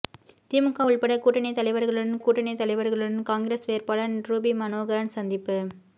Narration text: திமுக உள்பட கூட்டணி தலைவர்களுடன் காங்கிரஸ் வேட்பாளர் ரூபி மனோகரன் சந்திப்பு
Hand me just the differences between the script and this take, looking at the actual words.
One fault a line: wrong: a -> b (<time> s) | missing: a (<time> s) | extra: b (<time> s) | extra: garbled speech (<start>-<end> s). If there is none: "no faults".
extra: கூட்டணி தலைவர்களுடன் (2.2 s)